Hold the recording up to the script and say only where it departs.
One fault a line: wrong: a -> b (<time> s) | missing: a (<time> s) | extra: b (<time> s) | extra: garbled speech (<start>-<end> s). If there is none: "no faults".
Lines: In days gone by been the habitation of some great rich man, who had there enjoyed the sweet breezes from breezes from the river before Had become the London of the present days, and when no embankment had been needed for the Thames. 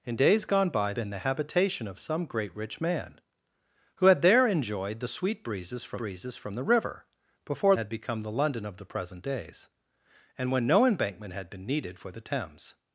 no faults